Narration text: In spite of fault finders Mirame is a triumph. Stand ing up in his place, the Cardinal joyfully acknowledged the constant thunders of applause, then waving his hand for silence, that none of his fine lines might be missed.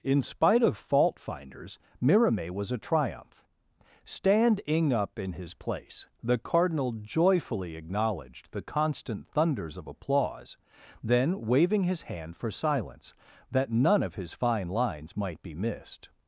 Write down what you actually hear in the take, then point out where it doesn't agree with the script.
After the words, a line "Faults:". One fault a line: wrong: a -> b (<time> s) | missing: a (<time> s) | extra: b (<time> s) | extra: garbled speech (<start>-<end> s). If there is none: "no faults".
In spite of fault finders Mirame was a triumph. Stand ing up in his place, the Cardinal joyfully acknowledged the constant thunders of applause, then waving his hand for silence, that none of his fine lines might be missed.
Faults:
wrong: is -> was (2.5 s)